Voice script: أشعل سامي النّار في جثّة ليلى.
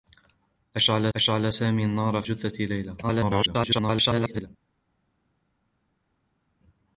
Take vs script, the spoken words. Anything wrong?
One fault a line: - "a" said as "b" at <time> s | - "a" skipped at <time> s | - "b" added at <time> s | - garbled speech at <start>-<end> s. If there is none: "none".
- "أشعل" added at 1.1 s
- "في" skipped at 2.2 s
- garbled speech at 3.0-4.5 s